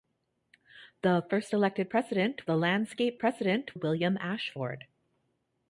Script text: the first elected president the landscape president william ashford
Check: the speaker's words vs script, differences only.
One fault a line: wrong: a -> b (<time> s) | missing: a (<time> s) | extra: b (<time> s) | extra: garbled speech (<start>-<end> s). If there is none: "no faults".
no faults